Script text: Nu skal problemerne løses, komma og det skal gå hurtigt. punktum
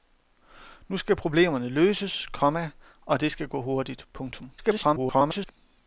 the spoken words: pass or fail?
fail